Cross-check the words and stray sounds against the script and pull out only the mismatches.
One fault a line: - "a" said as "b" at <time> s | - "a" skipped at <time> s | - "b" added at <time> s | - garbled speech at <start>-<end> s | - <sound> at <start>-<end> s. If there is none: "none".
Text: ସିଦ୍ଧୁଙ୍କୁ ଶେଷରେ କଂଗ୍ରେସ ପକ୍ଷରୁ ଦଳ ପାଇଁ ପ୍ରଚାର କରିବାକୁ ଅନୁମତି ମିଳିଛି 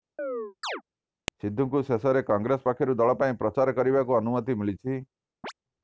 - chirp at 0.2-0.8 s
- chirp at 5.4-5.5 s